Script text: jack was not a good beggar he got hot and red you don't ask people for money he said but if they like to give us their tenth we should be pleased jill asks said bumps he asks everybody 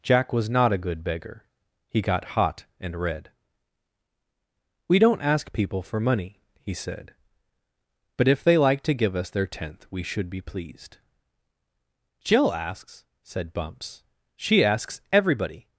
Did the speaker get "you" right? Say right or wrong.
wrong